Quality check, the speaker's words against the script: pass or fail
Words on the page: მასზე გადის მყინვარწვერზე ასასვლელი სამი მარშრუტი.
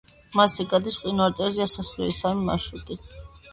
pass